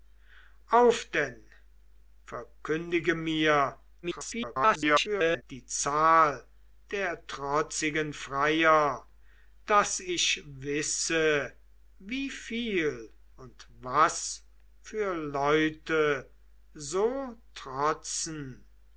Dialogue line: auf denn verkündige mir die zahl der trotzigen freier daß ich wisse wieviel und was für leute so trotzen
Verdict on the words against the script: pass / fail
fail